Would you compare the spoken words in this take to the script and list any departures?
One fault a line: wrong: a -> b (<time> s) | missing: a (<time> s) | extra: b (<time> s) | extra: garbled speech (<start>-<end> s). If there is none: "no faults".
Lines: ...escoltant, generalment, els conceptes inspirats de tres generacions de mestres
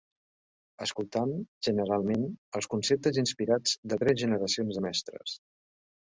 no faults